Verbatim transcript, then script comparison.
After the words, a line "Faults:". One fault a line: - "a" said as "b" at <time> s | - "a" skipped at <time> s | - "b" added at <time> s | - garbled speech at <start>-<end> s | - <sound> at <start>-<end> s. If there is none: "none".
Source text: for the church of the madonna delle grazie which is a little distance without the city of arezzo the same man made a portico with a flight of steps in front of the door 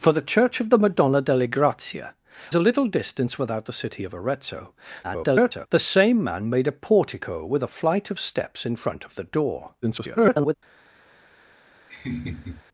for the church of the madonna delle grazie a little distance without the city of arezzo [garbled] the same man made a portico with a flight of steps in front of the door [garbled]
Faults:
- "which is" skipped at 2.0 s
- garbled speech at 5.0-5.7 s
- garbled speech at 9.8-10.5 s
- laugh at 11.9-12.6 s